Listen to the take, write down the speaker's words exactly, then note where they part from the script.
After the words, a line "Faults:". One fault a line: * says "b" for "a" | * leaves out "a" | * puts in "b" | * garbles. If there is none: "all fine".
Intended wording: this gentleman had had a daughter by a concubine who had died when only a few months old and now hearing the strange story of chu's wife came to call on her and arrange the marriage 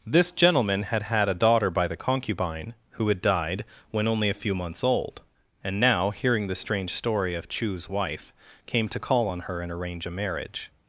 this gentleman had had a daughter by the concubine who had died when only a few months old and now hearing the strange story of chu's wife came to call on her and arrange a marriage
Faults:
* says "the" for "a"
* says "a" for "the"